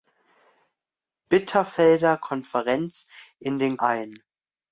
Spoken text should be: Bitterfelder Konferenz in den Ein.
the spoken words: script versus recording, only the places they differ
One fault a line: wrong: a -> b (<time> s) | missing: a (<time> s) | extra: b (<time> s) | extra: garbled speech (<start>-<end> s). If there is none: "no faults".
no faults